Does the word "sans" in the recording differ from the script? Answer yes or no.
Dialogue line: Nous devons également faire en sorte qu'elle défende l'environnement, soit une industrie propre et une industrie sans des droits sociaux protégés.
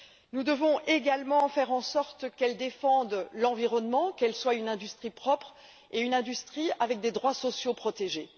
yes